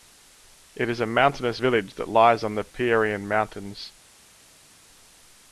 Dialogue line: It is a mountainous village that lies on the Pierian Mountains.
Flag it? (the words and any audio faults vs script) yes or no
no